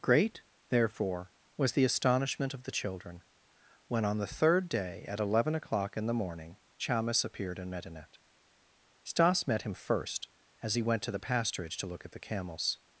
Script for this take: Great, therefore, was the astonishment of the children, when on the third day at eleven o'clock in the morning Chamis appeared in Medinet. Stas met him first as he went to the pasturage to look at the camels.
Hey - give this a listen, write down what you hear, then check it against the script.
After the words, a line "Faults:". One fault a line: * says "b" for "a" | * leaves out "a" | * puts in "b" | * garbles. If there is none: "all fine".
Great, therefore, was the astonishment of the children, when on the third day at eleven o'clock in the morning Chamis appeared in Medinet. Stas met him first as he went to the pasturage to look at the camels.
Faults:
all fine